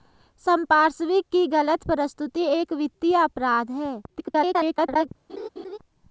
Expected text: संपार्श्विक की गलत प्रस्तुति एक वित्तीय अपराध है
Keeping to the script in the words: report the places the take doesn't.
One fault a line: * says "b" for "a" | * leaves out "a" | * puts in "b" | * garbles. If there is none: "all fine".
* garbles